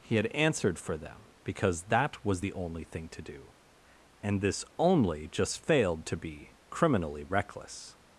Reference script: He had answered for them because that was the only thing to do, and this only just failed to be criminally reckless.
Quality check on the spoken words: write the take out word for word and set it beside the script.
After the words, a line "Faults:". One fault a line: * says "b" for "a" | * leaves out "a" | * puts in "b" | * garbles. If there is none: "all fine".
He had answered for them because that was the only thing to do, and this only just failed to be criminally reckless.
Faults:
all fine